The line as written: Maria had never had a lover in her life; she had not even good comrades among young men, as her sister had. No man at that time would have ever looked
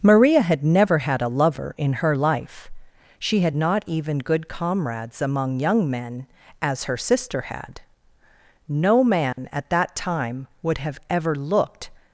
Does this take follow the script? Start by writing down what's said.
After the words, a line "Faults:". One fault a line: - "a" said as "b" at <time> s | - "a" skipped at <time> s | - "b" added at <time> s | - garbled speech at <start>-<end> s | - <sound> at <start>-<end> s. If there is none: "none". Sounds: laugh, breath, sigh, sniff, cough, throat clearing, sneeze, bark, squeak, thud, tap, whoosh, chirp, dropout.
Maria had never had a lover in her life; she had not even good comrades among young men, as her sister had. No man at that time would have ever looked
Faults:
- dropout at 9.3-9.4 s